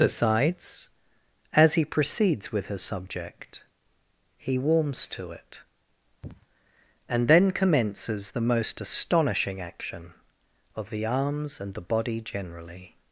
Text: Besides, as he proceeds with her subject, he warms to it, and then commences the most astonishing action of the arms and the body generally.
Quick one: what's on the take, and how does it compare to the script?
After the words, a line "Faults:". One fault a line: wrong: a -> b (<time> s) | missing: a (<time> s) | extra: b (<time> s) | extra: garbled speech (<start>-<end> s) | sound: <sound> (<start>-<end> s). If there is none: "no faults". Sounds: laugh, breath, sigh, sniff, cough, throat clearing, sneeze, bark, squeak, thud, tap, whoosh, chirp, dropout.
Besides, as he proceeds with her subject, he warms to it, and then commences the most astonishing action of the arms and the body generally.
Faults:
sound: sniff (6.2-6.5 s)